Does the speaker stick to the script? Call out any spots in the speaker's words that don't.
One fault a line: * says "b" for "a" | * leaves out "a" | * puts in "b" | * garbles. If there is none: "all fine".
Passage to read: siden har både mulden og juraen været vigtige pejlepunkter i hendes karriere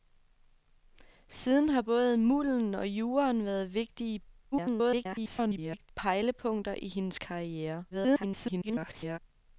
* garbles
* garbles